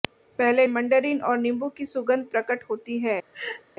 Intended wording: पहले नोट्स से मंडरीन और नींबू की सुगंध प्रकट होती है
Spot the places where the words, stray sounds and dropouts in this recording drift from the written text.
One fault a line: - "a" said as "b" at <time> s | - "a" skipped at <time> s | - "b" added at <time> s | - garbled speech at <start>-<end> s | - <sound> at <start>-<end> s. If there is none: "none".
- "नोट्स से" skipped at 0.7 s
- laugh at 3.3-3.6 s